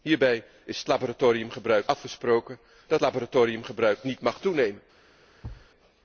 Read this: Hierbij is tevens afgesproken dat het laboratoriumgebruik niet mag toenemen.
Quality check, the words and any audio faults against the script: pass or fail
fail